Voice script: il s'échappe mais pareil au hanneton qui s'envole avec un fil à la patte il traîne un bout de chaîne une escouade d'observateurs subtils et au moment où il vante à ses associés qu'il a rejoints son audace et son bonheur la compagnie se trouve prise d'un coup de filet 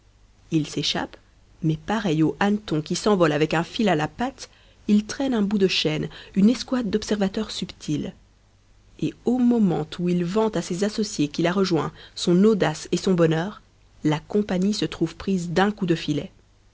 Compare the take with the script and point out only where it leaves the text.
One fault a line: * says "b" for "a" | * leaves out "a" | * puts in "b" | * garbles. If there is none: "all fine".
all fine